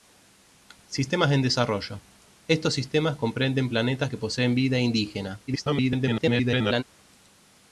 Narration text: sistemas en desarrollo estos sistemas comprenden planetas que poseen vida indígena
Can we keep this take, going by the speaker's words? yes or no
no